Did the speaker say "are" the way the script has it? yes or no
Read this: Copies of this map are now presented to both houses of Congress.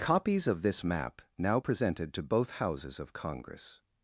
no